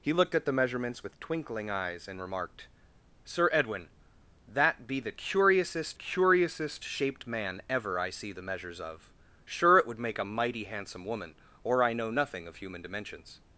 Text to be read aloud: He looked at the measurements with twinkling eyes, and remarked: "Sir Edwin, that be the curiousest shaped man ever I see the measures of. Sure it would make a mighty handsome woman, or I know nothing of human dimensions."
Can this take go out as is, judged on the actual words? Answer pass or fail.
fail